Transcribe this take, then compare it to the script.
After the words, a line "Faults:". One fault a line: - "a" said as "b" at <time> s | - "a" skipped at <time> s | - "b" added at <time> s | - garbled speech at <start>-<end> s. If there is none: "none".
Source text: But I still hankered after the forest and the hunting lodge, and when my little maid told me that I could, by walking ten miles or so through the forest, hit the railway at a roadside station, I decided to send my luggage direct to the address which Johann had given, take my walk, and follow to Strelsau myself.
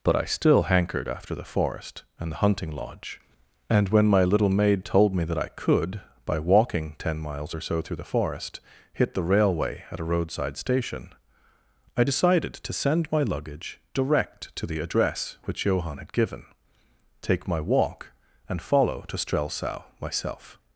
But I still hankered after the forest and the hunting lodge, and when my little maid told me that I could, by walking ten miles or so through the forest, hit the railway at a roadside station, I decided to send my luggage direct to the address which Johann had given, take my walk, and follow to Strelsau myself.
Faults:
none